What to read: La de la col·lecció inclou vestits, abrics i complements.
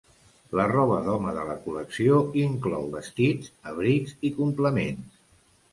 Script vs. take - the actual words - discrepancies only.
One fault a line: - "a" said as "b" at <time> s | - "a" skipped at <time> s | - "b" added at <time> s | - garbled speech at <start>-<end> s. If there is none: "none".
- "roba d'home" added at 0.7 s